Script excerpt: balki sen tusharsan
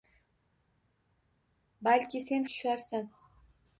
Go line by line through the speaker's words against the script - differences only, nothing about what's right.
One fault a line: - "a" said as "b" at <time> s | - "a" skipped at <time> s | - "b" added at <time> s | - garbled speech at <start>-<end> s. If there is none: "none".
none